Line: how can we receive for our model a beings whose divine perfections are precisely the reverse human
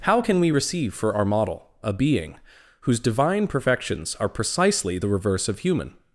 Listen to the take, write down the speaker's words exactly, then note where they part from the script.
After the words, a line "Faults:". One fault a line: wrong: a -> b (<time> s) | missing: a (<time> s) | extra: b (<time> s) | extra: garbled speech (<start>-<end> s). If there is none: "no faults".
how can we receive for our model a being whose divine perfections are precisely the reverse of human
Faults:
wrong: beings -> being (1.9 s)
extra: of (5.5 s)